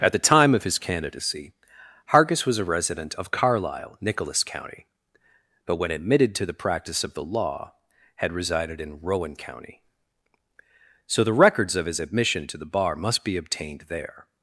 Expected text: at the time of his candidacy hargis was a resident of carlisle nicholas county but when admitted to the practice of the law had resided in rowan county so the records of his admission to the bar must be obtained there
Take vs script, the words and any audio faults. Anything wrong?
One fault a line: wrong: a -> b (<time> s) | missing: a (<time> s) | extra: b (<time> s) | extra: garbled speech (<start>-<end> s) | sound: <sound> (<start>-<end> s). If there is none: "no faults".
no faults